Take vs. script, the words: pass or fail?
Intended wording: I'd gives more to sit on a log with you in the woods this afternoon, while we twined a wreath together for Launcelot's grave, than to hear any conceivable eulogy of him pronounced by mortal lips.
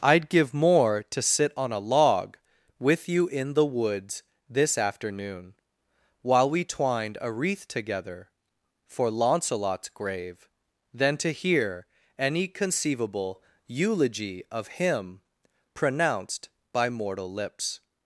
fail